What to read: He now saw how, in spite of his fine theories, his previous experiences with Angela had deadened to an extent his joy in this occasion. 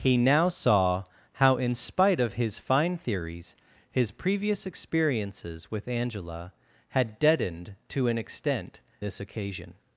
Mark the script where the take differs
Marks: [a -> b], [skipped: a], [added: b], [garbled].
He now saw how, in spite of his fine theories, his previous experiences with Angela had deadened to an extent [skipped: his joy in] this occasion.